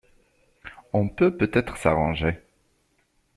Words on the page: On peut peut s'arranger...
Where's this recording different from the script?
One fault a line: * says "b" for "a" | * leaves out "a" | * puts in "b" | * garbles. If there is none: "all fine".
* puts in "être"